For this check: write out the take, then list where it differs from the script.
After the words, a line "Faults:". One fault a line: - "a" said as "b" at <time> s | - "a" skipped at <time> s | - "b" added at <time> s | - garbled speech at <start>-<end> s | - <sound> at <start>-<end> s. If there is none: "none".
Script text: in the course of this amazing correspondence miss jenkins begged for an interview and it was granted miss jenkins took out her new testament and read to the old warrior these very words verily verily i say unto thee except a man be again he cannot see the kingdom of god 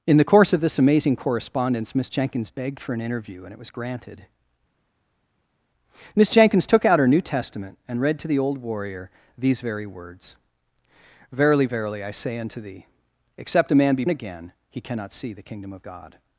in the course of this amazing correspondence miss jenkins begged for an interview and it was granted miss jenkins took out her new testament and read to the old warrior these very words verily verily i say unto thee except a man be again he cannot see the kingdom of god
Faults:
none